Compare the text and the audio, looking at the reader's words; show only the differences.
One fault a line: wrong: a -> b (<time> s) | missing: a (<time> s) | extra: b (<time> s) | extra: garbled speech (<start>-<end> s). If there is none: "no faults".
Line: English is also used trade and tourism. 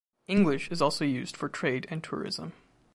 extra: for (1.4 s)